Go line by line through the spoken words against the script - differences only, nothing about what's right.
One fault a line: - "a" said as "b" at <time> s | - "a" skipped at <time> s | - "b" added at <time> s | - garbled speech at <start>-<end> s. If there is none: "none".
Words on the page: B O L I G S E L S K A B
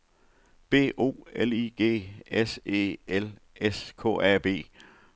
none